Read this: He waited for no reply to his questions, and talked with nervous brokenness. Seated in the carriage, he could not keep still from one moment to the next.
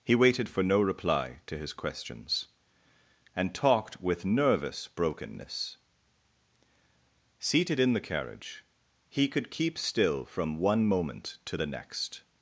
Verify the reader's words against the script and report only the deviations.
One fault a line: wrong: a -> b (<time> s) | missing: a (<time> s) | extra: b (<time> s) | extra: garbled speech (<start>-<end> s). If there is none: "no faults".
missing: not (9.5 s)